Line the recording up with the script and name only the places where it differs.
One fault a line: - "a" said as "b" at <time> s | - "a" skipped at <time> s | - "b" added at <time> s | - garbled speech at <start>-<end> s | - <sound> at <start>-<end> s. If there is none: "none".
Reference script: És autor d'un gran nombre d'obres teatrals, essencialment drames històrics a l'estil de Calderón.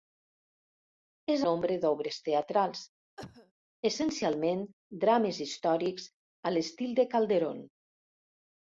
- "autor d'un gran" skipped at 1.4 s
- cough at 3.2-3.5 s